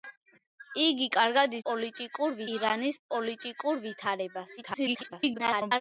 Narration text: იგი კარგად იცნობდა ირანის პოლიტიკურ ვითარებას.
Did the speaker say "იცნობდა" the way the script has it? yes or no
no